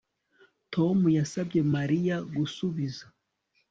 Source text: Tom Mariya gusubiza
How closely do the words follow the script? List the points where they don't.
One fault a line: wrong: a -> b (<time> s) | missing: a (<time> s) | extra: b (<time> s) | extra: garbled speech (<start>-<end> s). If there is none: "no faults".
extra: yasabye (1.2 s)